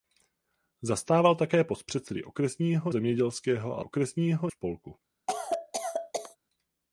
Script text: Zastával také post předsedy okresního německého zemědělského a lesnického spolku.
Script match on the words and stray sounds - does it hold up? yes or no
no